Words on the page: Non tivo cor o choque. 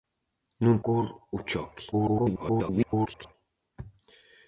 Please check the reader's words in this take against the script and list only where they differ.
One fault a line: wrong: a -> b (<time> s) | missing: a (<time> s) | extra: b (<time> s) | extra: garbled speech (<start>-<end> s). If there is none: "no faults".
missing: tivo (0.8 s)
extra: garbled speech (1.9-3.3 s)